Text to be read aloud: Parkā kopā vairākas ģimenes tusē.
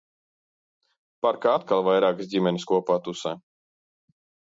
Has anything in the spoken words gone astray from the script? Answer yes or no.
yes